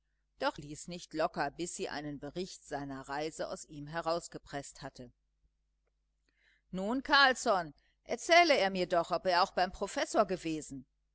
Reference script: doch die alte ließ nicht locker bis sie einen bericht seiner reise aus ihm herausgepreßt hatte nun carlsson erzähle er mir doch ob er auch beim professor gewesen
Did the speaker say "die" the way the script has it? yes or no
no